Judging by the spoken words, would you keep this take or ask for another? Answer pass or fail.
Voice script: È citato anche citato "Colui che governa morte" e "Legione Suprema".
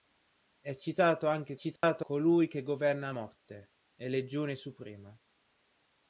pass